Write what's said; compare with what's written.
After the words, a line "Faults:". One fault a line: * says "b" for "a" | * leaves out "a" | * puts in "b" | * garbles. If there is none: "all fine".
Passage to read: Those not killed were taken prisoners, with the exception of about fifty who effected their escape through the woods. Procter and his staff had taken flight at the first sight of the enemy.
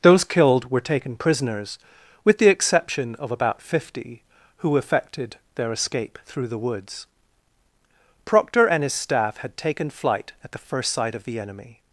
Those killed were taken prisoners, with the exception of about fifty who effected their escape through the woods. Procter and his staff had taken flight at the first sight of the enemy.
Faults:
* leaves out "not"